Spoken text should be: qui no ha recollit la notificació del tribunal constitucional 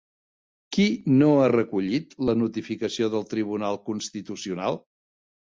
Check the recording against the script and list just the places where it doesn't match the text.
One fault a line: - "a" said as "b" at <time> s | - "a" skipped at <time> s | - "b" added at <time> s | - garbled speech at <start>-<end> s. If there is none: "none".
none